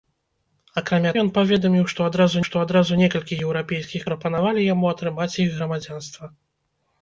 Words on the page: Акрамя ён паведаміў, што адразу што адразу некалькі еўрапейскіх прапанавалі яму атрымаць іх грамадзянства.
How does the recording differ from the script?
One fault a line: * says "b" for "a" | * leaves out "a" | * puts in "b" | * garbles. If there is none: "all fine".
all fine